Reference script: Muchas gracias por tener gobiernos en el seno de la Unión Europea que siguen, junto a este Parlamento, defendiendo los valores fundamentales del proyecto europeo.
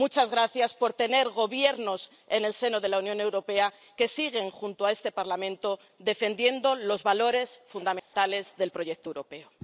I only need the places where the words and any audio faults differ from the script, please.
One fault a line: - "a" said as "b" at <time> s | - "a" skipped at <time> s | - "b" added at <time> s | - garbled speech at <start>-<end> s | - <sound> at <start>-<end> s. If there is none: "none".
- dropout at 8.0-8.1 s